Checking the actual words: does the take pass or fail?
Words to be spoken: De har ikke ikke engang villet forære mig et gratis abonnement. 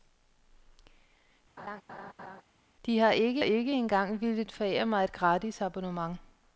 pass